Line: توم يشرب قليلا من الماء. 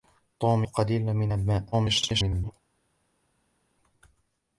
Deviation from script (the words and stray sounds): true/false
true